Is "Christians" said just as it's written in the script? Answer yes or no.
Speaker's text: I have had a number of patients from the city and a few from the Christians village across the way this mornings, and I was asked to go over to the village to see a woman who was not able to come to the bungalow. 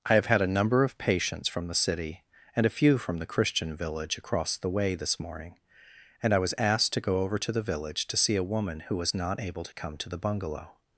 no